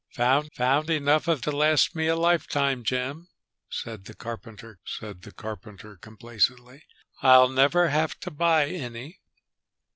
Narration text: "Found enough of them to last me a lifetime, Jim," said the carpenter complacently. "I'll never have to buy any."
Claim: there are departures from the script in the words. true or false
true